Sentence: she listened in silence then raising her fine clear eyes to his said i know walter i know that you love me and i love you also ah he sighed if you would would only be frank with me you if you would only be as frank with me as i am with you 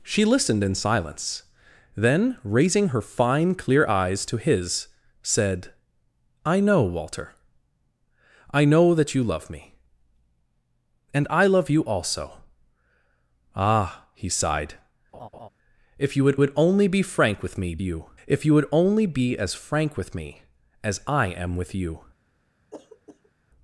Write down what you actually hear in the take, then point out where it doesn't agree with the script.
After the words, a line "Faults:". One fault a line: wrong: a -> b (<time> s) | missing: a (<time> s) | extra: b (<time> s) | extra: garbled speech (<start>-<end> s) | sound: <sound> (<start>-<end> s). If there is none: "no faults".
she listened in silence then raising her fine clear eyes to his said i know walter i know that you love me and i love you also ah he sighed if you would would only be frank with me you if you would only be as frank with me as i am with you
Faults:
sound: laugh (15.1-15.5 s)
sound: throat clearing (22.7-23.3 s)